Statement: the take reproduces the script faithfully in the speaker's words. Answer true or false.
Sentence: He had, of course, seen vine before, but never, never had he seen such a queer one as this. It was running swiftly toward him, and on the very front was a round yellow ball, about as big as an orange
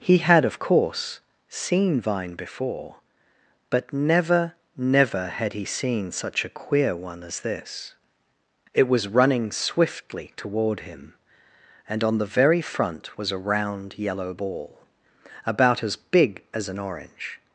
true